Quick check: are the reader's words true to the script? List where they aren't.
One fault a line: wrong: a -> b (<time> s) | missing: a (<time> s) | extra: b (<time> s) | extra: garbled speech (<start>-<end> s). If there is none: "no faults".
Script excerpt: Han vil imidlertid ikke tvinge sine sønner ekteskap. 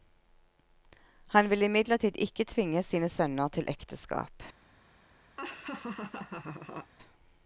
extra: til (3.5 s)